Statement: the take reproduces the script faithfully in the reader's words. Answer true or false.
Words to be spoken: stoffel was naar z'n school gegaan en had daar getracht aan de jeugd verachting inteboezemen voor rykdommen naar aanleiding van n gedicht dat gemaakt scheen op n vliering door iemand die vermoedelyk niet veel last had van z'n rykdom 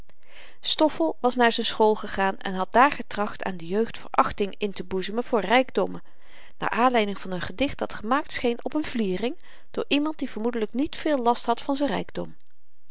true